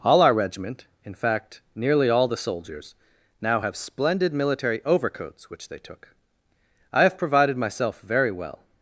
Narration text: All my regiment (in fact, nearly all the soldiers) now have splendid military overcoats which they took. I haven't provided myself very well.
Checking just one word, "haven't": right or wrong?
wrong